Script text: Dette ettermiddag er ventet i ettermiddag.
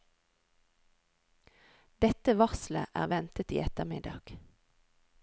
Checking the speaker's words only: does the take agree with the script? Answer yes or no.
no